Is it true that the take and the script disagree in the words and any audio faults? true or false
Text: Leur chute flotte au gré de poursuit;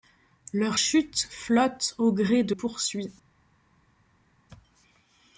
false